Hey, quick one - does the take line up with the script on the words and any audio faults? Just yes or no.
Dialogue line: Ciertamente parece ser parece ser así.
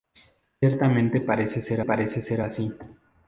yes